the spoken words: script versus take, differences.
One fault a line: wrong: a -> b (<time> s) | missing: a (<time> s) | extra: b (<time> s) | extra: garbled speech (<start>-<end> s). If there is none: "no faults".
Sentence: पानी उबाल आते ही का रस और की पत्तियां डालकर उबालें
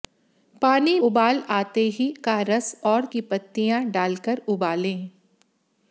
no faults